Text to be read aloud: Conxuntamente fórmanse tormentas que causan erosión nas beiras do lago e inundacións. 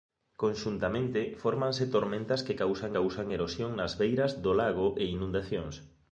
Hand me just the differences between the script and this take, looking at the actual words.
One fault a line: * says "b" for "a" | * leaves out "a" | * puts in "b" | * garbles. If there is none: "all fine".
* puts in "causan"